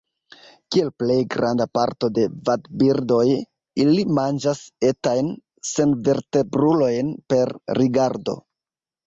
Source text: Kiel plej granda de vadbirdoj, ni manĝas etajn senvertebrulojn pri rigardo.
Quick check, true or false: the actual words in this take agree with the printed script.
false